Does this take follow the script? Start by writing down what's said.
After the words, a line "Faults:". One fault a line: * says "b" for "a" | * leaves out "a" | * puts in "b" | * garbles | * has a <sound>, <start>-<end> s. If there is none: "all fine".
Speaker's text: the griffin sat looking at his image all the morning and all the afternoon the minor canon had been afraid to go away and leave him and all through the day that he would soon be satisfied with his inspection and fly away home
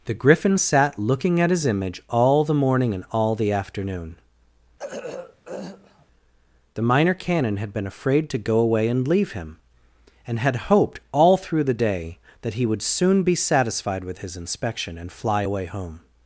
the griffin sat looking at his image all the morning and all the afternoon the minor canon had been afraid to go away and leave him and had hoped all through the day that he would soon be satisfied with his inspection and fly away home
Faults:
* has a throat clearing, 4.8-6.1 s
* puts in "had hoped"